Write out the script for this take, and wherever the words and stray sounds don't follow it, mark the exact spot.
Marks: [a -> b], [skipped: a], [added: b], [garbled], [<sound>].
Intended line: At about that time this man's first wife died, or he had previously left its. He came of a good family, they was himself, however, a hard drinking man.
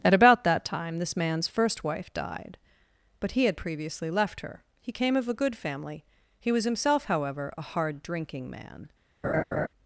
At about that time this man's first wife died, [or -> but] he had previously left [its. -> her] He came of a good family, [they -> he] was himself, however, a hard drinking man. [laugh]